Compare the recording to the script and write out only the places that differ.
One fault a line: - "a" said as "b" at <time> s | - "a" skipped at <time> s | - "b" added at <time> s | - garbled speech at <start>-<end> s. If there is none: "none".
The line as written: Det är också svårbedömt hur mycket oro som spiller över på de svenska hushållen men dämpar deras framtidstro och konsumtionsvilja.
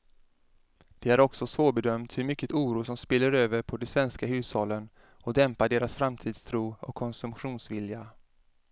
- "men" said as "och" at 5.0 s